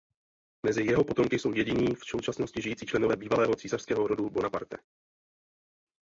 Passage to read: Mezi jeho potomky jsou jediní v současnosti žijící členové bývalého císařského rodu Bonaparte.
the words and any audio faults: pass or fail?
pass